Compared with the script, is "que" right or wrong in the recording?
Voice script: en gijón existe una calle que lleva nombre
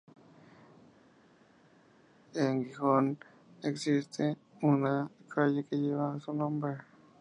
right